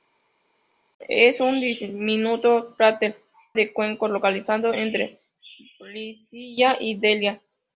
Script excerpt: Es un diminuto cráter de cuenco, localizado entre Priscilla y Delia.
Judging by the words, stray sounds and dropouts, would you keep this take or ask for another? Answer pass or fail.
pass